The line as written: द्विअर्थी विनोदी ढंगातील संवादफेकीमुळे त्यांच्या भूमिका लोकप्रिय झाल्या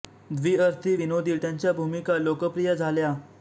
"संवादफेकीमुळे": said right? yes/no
no